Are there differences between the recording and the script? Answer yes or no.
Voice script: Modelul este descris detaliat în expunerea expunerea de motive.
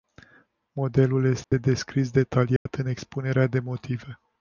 yes